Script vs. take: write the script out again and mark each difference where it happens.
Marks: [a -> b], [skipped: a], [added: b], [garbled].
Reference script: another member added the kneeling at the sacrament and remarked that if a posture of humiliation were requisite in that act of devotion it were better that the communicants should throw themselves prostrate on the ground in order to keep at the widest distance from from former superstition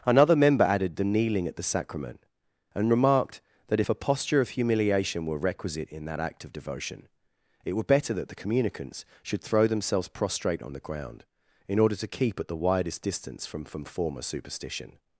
another member added the kneeling at the sacrament and remarked that if a posture of humiliation were requisite in that act of devotion it were better that the communicants should throw themselves prostrate on the ground in order to keep at the widest distance from from former superstition